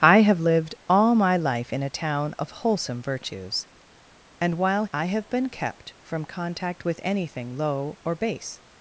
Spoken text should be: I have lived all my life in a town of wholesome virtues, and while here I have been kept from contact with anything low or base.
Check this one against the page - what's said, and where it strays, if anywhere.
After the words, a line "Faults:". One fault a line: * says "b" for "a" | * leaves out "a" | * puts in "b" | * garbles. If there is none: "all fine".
I have lived all my life in a town of wholesome virtues, and while I have been kept from contact with anything low or base.
Faults:
* leaves out "here"